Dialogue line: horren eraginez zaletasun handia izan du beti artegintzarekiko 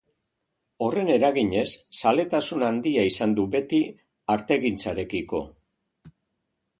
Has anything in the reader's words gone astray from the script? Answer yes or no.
no